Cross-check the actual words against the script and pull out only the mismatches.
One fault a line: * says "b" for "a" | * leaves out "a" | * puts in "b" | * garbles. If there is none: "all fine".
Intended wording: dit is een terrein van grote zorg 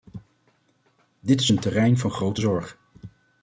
all fine